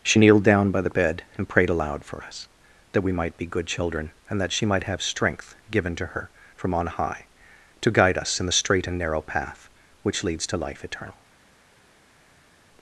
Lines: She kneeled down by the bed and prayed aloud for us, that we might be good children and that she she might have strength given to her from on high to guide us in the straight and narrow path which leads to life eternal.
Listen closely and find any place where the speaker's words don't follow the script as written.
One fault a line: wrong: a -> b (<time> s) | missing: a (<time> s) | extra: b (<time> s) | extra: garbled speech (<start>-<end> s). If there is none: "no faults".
missing: she (4.6 s)